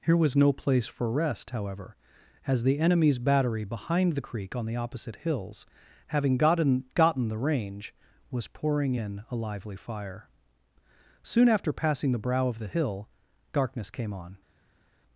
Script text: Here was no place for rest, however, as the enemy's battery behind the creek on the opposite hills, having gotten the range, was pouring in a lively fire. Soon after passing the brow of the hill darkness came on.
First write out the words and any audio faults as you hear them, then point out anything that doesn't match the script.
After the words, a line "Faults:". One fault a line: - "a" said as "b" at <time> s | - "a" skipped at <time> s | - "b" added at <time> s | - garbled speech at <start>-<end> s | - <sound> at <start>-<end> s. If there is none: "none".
Here was no place for rest, however, as the enemy's battery behind the creek on the opposite hills, having gotten gotten the range, was pouring in a lively fire. Soon after passing the brow of the hill darkness came on.
Faults:
- "gotten" added at 6.9 s